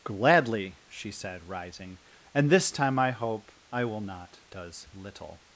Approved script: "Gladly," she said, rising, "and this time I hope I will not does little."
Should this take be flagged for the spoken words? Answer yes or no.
no